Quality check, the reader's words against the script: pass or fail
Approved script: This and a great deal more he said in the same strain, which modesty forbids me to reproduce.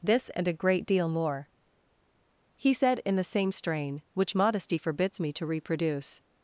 pass